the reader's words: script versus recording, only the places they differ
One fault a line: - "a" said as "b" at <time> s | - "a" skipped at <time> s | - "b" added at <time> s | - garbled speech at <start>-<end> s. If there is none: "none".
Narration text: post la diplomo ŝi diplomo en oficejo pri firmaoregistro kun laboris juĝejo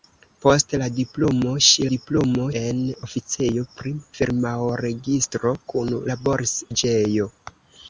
none